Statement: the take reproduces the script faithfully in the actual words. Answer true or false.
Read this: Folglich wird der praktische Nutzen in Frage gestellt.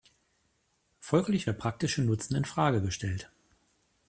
false